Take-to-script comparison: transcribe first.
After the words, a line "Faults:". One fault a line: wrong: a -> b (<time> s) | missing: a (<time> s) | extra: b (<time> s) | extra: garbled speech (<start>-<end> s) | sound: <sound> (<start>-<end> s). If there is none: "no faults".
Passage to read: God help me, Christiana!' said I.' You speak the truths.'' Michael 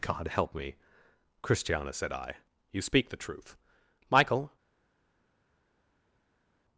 God help me, Christiana!' said I.' You speak the truth.'' Michael
Faults:
wrong: truths -> truth (3.2 s)